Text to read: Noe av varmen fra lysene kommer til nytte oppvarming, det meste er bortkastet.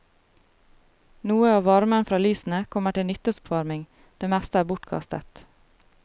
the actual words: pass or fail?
pass